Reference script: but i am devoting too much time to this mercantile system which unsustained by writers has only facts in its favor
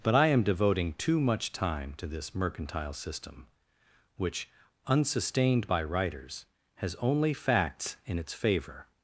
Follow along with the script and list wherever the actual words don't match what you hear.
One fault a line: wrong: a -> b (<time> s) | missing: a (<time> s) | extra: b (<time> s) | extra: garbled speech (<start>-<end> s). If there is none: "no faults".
no faults